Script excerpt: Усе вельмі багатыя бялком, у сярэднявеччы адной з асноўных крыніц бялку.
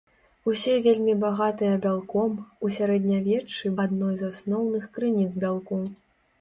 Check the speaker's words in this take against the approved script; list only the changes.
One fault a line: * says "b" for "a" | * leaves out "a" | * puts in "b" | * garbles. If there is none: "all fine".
all fine